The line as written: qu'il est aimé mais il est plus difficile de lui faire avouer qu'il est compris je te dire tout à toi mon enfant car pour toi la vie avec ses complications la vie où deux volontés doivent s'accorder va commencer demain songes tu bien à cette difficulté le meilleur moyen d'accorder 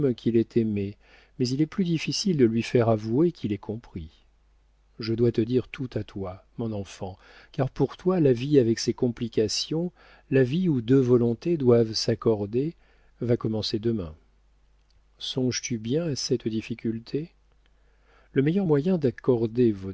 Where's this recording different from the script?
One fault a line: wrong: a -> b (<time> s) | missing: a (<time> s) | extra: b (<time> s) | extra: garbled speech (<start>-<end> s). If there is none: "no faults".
extra: dois (5.1 s)